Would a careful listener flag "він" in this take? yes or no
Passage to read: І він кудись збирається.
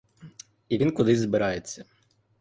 no